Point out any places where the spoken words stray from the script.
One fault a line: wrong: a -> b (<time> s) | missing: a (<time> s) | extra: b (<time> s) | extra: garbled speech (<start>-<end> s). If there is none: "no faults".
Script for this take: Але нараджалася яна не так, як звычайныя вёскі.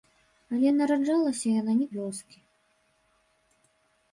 missing: так як звычайныя (1.9 s)